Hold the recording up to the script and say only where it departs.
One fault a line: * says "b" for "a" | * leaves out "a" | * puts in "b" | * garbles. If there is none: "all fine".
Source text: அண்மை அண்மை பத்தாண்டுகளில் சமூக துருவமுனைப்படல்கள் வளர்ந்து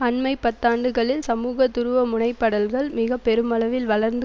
* leaves out "அண்மை"
* puts in "மிக பெருமளவில்"